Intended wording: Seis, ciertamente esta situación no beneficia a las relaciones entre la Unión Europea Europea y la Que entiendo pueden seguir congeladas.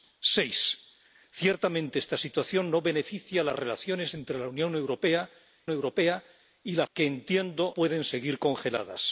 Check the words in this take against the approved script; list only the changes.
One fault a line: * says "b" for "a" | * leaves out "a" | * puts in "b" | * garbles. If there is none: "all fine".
all fine